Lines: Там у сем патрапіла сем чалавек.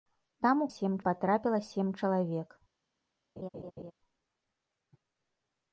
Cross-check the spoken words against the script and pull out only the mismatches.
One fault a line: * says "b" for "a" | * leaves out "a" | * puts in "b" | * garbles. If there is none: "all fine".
all fine